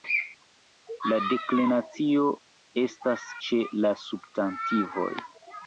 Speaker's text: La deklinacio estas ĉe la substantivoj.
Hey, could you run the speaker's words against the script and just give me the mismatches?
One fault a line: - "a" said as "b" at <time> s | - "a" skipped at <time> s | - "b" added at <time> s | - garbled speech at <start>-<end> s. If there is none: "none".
none